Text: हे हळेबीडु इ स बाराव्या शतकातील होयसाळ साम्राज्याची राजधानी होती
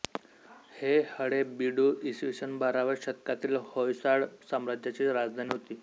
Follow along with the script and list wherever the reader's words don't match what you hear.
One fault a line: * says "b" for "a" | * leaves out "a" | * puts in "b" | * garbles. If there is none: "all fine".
all fine